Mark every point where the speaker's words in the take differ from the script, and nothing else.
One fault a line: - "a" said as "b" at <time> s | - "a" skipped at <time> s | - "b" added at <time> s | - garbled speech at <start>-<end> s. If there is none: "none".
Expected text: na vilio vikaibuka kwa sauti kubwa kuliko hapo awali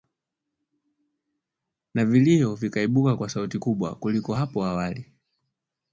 none